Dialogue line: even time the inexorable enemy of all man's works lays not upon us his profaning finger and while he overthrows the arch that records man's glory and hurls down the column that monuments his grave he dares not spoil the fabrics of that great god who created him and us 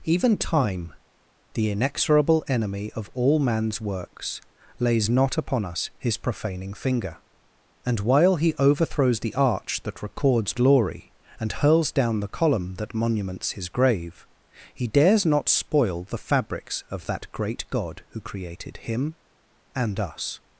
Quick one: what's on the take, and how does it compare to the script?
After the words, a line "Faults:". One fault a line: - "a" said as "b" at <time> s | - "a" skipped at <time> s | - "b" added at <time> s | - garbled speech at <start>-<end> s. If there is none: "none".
even time the inexorable enemy of all man's works lays not upon us his profaning finger and while he overthrows the arch that records glory and hurls down the column that monuments his grave he dares not spoil the fabrics of that great god who created him and us
Faults:
- "man's" skipped at 10.6 s